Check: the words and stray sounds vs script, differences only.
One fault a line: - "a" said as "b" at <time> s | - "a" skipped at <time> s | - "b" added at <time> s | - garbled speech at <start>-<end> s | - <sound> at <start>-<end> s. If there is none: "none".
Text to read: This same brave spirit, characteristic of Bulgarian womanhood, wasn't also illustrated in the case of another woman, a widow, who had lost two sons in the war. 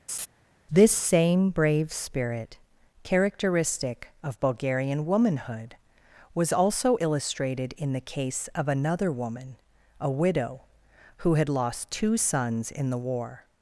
- laugh at 0.1-0.3 s
- "wasn't" said as "was" at 6.3 s